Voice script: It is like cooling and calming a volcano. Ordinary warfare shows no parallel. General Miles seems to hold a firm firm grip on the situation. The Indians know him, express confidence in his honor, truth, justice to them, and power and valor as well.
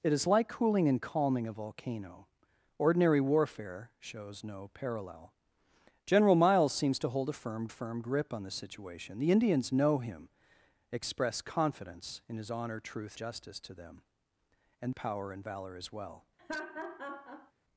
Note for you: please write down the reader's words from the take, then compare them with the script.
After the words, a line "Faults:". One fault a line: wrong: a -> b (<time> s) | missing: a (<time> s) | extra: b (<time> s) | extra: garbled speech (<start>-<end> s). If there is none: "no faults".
It is like cooling and calming a volcano. Ordinary warfare shows no parallel. General Miles seems to hold a firm firm grip on the situation. The Indians know him, express confidence in his honor, truth, justice to them, and power and valor as well.
Faults:
no faults